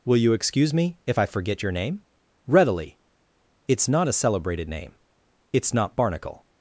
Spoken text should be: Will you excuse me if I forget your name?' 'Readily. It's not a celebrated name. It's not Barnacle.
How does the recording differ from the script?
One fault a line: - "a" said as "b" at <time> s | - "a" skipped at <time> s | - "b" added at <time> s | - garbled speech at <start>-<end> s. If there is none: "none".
none